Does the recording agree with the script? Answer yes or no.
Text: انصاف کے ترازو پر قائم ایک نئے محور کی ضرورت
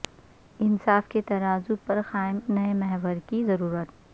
no